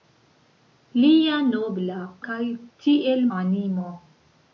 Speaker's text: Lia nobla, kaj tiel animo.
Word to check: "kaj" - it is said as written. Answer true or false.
true